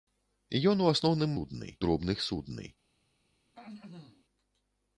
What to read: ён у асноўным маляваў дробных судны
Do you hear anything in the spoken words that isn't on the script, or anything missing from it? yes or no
yes